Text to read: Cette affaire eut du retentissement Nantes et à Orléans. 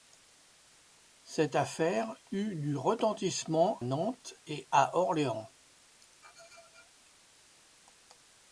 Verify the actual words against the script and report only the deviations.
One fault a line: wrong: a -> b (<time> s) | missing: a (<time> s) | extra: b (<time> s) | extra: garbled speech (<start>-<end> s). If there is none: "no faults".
no faults